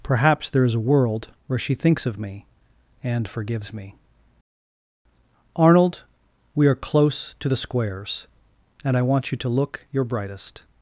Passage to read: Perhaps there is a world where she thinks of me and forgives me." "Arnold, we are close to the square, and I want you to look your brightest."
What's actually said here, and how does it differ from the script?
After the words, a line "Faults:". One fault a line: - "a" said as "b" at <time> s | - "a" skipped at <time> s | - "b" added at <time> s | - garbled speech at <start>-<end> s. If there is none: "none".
Perhaps there is a world where she thinks of me and forgives me." "Arnold, we are close to the squares, and I want you to look your brightest."
Faults:
- "square" said as "squares" at 7.6 s